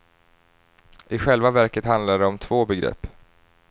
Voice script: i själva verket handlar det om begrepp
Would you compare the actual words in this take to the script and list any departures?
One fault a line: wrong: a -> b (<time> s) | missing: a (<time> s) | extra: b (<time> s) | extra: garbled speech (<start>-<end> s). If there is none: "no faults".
extra: två (2.4 s)